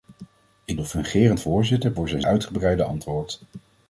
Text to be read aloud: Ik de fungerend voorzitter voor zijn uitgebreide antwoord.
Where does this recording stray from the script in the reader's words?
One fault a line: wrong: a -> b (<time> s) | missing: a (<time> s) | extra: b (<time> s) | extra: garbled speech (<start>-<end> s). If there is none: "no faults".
no faults